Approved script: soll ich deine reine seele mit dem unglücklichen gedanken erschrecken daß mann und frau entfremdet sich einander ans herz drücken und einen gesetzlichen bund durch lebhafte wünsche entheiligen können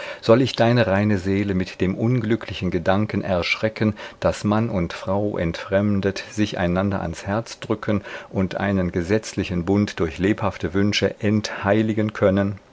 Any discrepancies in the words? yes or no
no